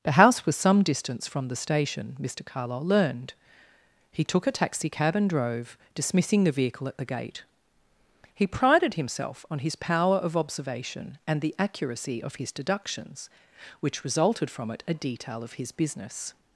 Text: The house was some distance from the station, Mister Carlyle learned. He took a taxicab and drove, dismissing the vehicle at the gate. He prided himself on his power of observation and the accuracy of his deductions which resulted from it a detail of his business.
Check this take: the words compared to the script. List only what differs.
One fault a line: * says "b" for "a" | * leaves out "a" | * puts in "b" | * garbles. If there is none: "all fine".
all fine